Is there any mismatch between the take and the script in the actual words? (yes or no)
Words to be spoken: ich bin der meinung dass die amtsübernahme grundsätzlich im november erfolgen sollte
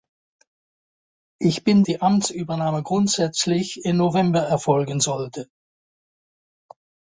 yes